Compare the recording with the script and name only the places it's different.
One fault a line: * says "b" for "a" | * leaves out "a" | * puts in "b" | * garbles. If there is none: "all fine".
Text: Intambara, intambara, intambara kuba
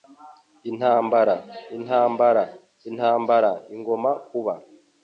* puts in "igomba"